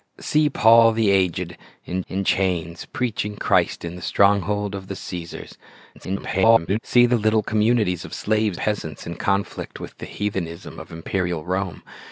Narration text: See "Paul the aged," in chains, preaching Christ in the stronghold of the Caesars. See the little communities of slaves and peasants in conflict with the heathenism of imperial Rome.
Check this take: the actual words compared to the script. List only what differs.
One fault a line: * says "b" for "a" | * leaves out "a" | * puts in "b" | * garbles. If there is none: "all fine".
* puts in "in"
* garbles
* leaves out "and"